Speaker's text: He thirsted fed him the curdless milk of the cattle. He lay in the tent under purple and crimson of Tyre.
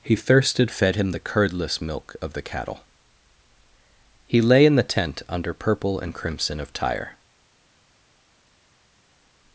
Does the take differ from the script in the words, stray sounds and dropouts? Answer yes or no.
no